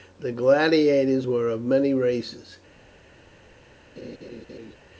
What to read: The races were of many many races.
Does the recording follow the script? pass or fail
fail